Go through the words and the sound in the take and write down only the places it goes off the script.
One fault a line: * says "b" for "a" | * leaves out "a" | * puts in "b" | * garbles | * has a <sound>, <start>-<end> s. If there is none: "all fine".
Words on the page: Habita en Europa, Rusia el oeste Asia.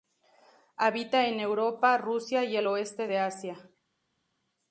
* puts in "y"
* puts in "de"